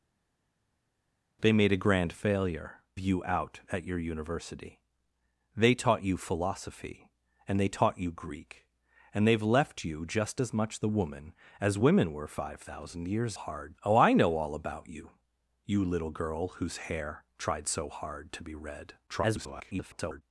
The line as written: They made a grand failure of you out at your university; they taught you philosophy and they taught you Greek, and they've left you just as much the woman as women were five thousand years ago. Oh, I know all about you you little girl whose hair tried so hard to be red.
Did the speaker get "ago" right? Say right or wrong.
wrong